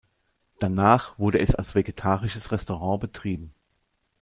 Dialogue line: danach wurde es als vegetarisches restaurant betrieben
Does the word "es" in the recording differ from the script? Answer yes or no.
no